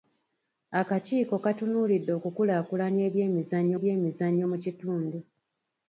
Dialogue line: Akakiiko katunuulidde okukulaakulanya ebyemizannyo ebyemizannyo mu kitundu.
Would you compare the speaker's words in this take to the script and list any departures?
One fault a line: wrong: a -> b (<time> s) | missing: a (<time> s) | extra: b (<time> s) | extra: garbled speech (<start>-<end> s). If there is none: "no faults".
no faults